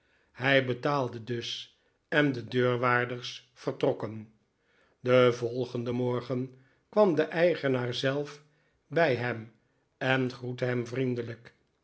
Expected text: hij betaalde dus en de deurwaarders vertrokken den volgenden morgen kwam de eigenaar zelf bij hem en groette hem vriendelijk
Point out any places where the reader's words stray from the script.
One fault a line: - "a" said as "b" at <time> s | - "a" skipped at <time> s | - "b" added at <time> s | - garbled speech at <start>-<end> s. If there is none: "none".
none